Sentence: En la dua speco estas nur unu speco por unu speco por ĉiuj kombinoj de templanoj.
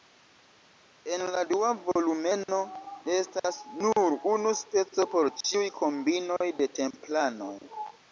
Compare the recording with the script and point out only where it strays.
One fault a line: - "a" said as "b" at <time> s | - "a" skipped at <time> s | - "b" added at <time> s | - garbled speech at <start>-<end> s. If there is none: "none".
- "speco" said as "volumeno" at 1.9 s
- "unu speco por" skipped at 5.3 s